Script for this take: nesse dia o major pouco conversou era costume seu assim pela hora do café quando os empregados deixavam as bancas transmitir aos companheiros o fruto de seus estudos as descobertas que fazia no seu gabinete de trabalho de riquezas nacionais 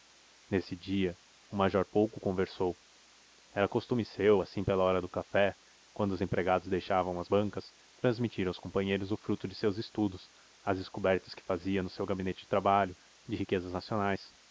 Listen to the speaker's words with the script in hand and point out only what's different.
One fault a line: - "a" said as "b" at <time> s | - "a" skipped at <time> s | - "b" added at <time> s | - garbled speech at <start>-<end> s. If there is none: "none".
none